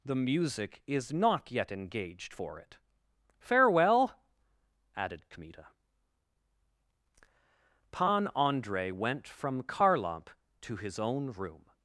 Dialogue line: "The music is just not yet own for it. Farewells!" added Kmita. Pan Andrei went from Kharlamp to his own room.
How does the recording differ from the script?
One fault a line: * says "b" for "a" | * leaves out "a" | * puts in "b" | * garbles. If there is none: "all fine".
* leaves out "just"
* says "engaged" for "own"
* says "Farewell" for "Farewells"